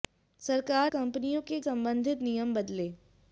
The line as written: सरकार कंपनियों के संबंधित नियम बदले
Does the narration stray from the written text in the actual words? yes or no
no